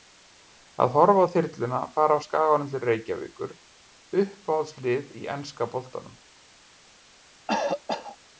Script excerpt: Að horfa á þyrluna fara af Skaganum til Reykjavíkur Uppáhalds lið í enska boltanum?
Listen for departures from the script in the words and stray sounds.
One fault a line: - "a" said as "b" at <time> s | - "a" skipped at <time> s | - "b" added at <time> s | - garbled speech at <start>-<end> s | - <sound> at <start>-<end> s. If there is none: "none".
- cough at 7.5-8.2 s